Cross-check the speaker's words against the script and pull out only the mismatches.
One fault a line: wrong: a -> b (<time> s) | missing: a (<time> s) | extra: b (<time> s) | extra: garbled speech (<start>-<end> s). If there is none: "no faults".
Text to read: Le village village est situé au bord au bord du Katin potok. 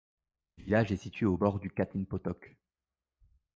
missing: village (0.9 s)
missing: au bord (1.6 s)